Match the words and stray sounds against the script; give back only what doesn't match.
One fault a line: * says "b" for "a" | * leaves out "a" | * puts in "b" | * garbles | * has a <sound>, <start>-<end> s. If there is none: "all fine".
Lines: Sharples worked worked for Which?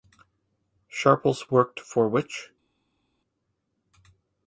* leaves out "worked"